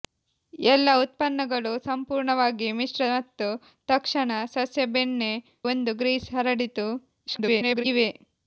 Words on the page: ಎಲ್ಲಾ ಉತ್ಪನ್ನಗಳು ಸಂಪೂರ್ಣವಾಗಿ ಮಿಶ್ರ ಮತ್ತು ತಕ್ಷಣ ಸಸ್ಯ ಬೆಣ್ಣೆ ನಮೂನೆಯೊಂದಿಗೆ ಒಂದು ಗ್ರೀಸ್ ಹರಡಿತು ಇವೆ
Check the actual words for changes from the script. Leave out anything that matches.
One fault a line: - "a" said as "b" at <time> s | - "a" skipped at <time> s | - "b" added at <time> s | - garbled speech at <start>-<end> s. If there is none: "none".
- "ನಮೂನೆಯೊಂದಿಗೆ" skipped at 5.3 s
- garbled speech at 7.3-7.8 s